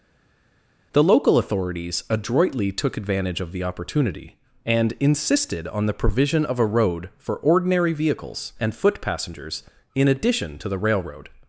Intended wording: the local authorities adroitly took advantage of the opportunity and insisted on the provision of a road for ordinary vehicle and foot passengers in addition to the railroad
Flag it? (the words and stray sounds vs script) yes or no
yes